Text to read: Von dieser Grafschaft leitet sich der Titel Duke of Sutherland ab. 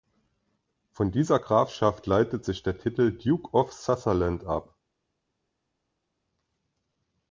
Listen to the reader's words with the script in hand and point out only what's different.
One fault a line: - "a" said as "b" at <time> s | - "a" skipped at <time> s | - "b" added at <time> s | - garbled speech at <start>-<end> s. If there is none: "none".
none